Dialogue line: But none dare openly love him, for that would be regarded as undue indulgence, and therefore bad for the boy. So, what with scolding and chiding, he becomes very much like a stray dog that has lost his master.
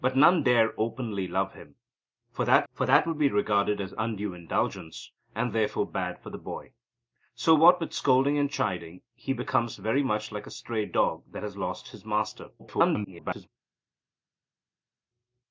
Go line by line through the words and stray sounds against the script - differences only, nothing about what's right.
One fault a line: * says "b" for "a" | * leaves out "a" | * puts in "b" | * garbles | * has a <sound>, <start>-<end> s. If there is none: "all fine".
* puts in "for that"
* garbles